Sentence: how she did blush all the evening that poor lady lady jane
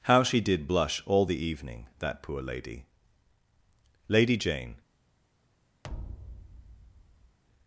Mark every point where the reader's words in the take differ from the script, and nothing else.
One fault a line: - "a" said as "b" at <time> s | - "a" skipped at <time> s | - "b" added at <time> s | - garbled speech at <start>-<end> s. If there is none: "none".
none